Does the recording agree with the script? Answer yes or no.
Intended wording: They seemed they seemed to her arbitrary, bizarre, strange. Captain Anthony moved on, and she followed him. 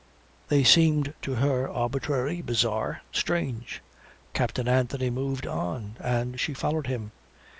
no